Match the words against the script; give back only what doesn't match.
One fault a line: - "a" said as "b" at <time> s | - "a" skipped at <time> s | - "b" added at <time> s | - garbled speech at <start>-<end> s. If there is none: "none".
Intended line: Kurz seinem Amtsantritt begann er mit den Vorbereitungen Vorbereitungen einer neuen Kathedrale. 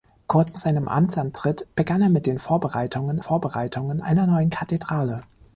none